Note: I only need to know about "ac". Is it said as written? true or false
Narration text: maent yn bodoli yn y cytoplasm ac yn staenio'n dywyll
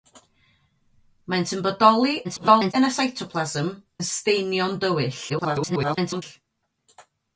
false